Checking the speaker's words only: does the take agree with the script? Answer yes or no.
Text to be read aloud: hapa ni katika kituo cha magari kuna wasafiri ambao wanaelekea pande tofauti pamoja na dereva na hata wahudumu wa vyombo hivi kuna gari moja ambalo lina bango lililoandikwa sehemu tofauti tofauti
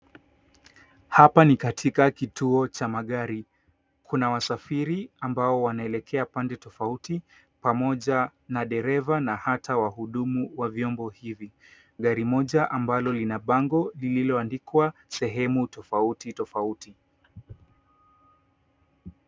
no